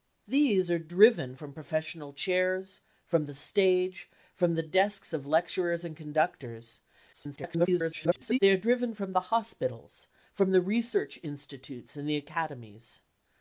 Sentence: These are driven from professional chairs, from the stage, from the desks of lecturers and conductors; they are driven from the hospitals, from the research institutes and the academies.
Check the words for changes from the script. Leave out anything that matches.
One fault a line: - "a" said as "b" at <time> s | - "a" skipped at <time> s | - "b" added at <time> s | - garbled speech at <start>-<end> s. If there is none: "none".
- garbled speech at 7.1-8.4 s